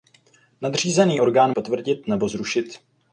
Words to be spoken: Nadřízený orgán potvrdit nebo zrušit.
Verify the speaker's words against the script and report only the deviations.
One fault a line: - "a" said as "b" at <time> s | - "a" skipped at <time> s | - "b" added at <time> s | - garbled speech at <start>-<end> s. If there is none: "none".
none